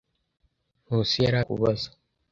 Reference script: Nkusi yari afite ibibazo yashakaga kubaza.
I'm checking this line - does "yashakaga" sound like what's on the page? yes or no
no